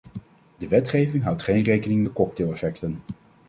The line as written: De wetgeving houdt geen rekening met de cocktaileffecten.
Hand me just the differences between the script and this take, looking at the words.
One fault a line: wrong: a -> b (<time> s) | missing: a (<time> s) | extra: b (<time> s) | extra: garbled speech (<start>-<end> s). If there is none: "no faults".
missing: met (2.1 s)